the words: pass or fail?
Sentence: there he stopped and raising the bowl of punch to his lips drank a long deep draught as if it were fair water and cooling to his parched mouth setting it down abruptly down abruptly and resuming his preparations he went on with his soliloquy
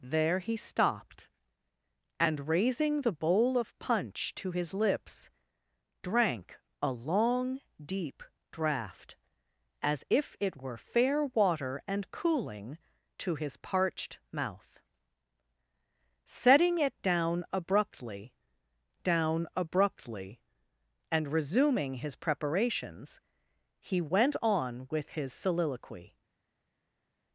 pass